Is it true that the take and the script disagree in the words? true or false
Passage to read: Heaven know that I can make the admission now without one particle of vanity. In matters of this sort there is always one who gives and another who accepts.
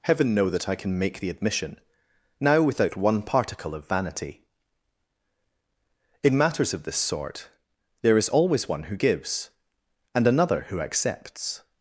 false